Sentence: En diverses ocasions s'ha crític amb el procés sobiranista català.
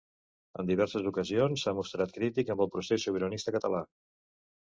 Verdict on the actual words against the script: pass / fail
fail